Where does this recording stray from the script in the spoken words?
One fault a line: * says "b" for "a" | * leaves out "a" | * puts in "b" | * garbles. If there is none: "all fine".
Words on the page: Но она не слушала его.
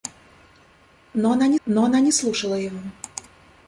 * puts in "но она не"